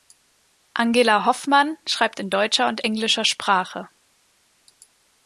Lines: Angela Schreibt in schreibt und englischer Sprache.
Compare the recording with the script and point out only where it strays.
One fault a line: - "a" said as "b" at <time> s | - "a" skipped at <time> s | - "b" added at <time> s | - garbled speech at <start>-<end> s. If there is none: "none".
- "Hoffmann" added at 1.2 s
- "schreibt" said as "deutscher" at 2.3 s